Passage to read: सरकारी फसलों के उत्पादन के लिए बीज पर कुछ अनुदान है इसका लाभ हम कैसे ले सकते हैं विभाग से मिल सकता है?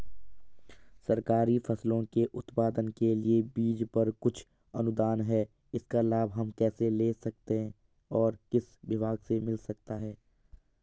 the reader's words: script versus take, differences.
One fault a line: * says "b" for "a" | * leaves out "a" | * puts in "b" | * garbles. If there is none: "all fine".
* puts in "और किस"